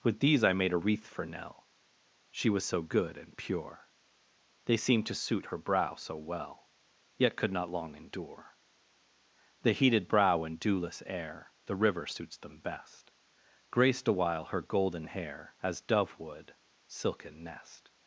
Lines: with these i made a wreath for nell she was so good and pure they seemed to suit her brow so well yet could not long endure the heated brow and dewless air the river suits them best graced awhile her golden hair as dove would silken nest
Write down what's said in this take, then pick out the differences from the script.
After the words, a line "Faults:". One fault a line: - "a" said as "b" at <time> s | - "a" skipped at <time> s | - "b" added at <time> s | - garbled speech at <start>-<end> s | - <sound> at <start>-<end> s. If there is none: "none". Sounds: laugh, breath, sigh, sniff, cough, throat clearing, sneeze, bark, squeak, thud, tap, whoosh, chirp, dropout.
with these i made a wreath for nell she was so good and pure they seemed to suit her brow so well yet could not long endure the heated brow and dewless air the river suits them best graced awhile her golden hair as dove would silken nest
Faults:
none